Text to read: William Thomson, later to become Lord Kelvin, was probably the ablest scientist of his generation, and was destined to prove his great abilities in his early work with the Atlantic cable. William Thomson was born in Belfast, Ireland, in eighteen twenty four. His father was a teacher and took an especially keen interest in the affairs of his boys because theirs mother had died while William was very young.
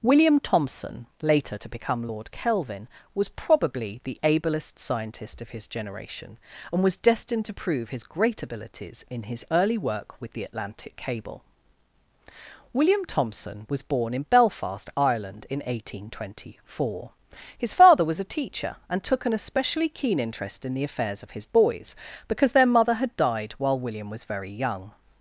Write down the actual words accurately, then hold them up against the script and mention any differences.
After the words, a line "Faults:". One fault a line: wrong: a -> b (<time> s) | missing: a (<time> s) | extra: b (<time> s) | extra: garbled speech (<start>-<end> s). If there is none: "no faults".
William Thomson, later to become Lord Kelvin, was probably the ablest scientist of his generation, and was destined to prove his great abilities in his early work with the Atlantic cable. William Thomson was born in Belfast, Ireland, in eighteen twenty four. His father was a teacher and took an especially keen interest in the affairs of his boys because their mother had died while William was very young.
Faults:
wrong: theirs -> their (22.5 s)